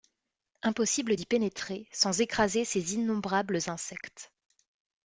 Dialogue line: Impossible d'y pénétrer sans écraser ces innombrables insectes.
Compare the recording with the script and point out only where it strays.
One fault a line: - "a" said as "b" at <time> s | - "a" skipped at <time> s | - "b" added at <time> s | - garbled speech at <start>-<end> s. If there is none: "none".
none